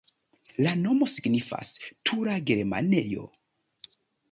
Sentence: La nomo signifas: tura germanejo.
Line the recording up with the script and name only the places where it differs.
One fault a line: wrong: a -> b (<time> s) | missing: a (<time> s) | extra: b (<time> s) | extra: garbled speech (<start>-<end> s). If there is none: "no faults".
no faults